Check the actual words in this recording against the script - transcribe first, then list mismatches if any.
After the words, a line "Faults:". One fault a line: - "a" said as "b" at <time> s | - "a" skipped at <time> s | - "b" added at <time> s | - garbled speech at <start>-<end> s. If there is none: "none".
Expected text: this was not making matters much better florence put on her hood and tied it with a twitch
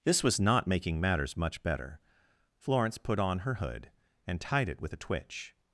this was not making matters much better florence put on her hood and tied it with a twitch
Faults:
none